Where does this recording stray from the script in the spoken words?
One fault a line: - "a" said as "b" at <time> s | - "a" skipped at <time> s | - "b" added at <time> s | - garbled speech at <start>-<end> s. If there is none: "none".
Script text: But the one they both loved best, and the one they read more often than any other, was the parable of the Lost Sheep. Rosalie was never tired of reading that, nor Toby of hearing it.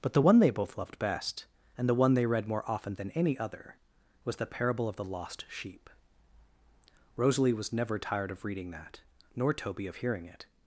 none